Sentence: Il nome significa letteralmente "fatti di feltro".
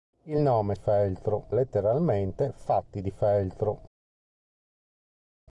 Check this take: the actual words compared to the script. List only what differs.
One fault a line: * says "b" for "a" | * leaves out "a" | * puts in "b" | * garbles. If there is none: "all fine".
* says "feltro" for "significa"